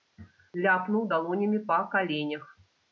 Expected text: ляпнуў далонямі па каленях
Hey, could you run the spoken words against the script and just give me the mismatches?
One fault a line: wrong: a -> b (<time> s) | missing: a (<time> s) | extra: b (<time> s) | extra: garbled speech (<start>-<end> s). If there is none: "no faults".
no faults